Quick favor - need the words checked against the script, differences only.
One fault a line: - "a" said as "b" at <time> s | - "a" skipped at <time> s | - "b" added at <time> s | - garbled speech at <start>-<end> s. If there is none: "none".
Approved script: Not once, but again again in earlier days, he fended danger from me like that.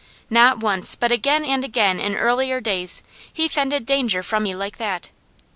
- "and" added at 1.4 s